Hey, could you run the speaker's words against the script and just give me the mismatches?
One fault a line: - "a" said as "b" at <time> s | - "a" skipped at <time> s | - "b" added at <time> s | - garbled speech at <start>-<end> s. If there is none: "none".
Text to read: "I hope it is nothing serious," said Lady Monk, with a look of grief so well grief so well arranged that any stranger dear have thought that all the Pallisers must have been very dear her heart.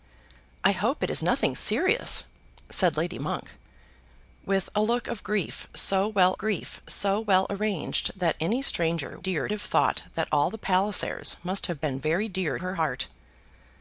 none